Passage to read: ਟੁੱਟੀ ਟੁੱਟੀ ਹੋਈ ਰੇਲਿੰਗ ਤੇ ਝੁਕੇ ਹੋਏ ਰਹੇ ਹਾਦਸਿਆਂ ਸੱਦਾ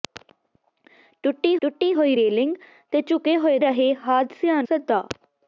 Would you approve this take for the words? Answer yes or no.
yes